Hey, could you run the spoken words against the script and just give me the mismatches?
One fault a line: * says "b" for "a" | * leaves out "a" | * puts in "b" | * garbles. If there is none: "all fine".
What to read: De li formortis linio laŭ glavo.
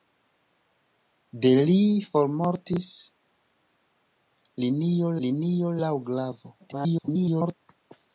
* puts in "linio"
* garbles